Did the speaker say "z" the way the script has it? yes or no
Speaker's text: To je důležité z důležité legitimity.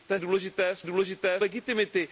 yes